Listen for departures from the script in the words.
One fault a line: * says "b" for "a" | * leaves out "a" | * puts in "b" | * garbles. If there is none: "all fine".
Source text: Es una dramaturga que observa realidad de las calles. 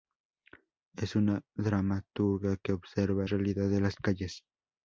all fine